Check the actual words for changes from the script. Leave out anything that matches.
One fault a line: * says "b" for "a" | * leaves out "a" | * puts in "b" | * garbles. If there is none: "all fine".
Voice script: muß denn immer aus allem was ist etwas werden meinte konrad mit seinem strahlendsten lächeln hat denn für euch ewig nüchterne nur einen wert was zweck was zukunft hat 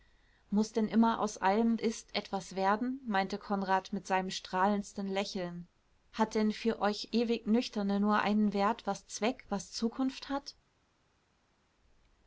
* leaves out "was"